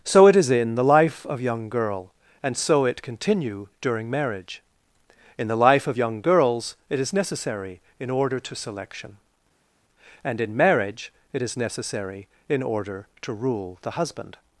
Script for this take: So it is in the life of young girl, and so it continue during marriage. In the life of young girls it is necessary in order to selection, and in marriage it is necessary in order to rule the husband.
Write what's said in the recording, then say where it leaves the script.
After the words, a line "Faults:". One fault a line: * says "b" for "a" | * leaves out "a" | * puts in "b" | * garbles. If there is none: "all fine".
So it is in the life of young girl, and so it continue during marriage. In the life of young girls it is necessary in order to selection, and in marriage it is necessary in order to rule the husband.
Faults:
all fine